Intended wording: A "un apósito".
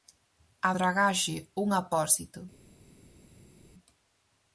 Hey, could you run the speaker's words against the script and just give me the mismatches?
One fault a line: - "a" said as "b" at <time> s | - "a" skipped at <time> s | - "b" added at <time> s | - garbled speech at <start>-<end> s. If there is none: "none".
- "dragaxe" added at 0.8 s